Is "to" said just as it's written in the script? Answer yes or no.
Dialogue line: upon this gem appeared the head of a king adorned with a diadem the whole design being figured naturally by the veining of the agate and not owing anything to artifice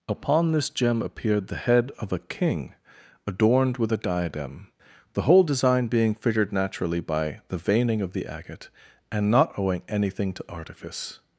yes